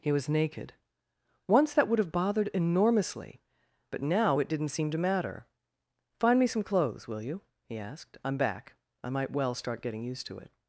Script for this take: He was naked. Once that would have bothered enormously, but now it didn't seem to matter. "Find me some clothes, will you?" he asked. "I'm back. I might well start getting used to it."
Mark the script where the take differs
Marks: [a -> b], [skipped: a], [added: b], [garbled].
He was naked. Once that would have bothered enormously, but now it didn't seem to matter. "Find me some clothes, will you?" he asked. "I'm back. I might well start getting used to it."